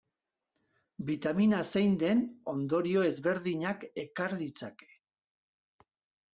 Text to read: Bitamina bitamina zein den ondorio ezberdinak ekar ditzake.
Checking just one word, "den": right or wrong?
right